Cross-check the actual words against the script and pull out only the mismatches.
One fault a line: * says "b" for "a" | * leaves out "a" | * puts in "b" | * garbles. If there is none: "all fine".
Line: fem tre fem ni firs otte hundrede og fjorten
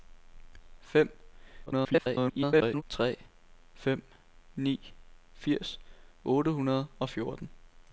* garbles